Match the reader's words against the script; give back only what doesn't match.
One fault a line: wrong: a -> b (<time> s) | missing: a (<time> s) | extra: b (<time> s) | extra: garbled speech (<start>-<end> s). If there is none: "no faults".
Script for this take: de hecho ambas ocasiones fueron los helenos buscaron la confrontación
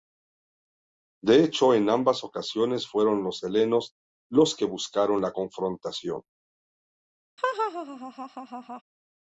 extra: en (1.8 s)
extra: los que (4.3 s)